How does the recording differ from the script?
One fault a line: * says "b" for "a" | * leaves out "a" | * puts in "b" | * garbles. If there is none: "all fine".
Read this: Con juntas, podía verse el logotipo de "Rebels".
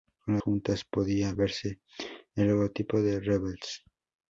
all fine